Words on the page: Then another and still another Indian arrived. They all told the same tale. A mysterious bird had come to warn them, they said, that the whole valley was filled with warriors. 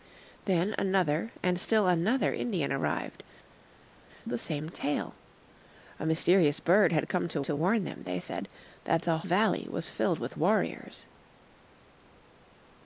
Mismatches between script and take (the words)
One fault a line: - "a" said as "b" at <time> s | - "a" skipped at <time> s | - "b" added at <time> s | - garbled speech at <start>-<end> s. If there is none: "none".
- "They all told" skipped at 3.2 s
- "to" added at 7.4 s
- "whole" skipped at 9.2 s